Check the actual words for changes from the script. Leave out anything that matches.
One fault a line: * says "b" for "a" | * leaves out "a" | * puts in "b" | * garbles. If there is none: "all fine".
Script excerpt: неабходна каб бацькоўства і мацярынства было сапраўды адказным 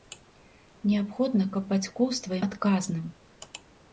* leaves out "мацярынства было сапраўды"